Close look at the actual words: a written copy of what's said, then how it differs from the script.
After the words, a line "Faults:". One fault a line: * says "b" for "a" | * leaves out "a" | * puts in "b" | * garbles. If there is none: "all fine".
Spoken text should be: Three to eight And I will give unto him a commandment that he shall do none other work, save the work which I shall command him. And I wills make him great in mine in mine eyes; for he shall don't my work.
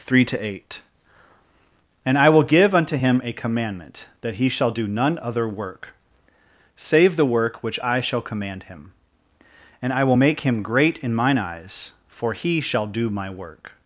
Three to eight And I will give unto him a commandment that he shall do none other work, save the work which I shall command him. And I will make him great in mine eyes; for he shall do my work.
Faults:
* says "will" for "wills"
* leaves out "in mine"
* says "do" for "don't"